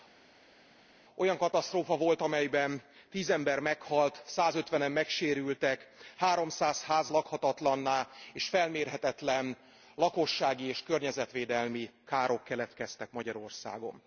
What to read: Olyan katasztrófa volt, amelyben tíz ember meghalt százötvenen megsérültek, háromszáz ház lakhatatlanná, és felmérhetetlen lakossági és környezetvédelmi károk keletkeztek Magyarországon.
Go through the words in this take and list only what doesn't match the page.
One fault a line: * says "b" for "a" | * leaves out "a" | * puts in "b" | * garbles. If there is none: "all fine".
all fine